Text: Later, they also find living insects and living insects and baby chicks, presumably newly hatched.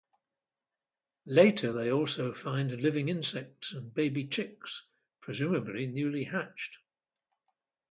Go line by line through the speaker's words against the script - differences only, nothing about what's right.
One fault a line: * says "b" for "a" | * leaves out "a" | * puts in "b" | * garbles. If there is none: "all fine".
* leaves out "living insects and"